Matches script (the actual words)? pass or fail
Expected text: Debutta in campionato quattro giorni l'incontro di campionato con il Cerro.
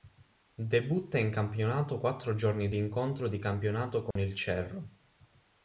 pass